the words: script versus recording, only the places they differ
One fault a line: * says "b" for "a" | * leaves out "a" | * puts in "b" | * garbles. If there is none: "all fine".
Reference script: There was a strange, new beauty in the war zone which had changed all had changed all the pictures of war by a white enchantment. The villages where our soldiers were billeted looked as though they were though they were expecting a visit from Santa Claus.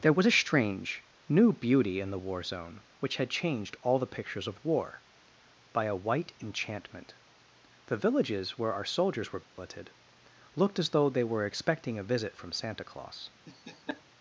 * leaves out "had changed all"
* leaves out "though they were"